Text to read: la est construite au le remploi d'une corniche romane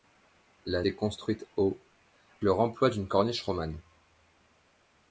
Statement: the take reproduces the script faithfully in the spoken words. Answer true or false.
true